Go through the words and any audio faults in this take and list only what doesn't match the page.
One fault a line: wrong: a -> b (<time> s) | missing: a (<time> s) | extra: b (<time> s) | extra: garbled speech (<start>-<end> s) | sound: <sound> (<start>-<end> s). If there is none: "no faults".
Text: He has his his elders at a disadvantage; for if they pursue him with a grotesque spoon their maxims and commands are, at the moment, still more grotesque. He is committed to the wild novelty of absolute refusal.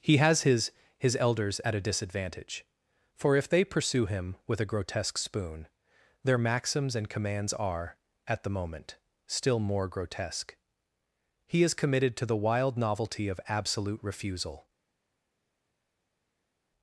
no faults